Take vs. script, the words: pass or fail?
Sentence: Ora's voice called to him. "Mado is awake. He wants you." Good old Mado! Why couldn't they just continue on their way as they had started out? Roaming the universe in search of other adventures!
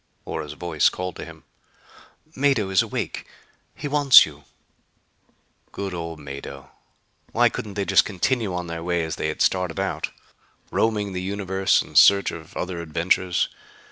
pass